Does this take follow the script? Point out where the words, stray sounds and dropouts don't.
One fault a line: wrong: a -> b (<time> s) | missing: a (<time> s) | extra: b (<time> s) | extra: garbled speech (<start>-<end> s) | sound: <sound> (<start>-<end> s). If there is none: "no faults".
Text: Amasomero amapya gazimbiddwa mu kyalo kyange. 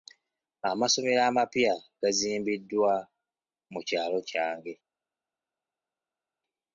no faults